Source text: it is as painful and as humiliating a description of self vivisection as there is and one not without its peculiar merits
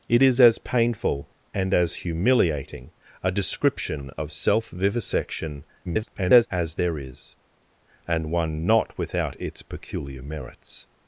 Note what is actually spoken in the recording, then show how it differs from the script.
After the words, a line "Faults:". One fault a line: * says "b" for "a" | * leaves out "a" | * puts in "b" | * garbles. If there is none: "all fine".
it is as painful and as humiliating a description of self vivisection [garbled] as there is and one not without its peculiar merits
Faults:
* garbles